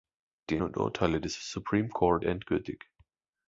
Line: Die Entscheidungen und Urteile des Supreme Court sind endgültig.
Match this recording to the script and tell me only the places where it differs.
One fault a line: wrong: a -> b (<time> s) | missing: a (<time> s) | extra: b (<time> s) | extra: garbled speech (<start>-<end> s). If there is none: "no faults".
missing: Entscheidungen (0.6 s)
missing: sind (2.3 s)